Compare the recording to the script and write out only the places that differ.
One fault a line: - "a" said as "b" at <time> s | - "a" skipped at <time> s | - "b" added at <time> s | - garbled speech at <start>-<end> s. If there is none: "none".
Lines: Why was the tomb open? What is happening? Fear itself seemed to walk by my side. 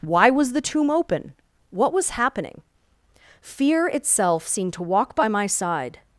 - "is" said as "was" at 1.9 s